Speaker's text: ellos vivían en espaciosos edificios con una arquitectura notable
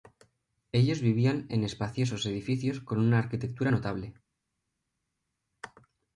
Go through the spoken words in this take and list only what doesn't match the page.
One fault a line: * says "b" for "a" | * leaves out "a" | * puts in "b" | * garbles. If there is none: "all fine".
all fine